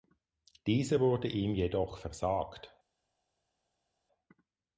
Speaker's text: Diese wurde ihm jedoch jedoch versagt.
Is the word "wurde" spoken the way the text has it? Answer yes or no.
yes